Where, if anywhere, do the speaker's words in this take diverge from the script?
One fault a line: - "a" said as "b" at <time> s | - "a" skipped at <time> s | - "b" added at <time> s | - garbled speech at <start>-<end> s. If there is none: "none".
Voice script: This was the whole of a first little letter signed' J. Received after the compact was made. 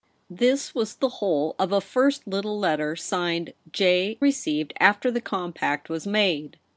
none